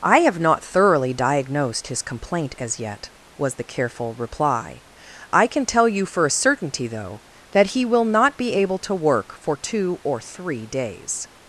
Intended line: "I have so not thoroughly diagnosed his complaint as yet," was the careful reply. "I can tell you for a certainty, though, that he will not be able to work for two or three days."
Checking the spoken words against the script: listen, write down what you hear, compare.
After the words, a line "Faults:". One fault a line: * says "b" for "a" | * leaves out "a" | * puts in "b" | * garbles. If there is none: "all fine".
"I have not thoroughly diagnosed his complaint as yet," was the careful reply. "I can tell you for a certainty, though, that he will not be able to work for two or three days."
Faults:
* leaves out "so"